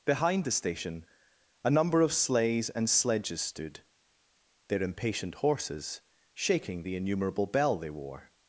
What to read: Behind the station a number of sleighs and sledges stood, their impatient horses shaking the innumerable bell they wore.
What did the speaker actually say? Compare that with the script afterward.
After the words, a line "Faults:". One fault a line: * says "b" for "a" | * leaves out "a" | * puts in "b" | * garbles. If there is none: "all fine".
Behind the station a number of sleighs and sledges stood, their impatient horses shaking the innumerable bell they wore.
Faults:
all fine